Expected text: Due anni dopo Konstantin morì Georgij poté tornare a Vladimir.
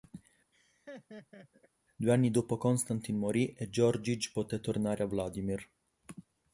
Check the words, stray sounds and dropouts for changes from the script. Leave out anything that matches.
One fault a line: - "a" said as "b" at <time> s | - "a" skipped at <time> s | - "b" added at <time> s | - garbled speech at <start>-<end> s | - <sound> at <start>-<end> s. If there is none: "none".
- laugh at 0.5-1.7 s
- "e" added at 3.5 s